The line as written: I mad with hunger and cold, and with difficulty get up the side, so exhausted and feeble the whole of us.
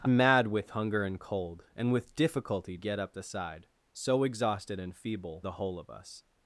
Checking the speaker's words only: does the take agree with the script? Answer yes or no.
yes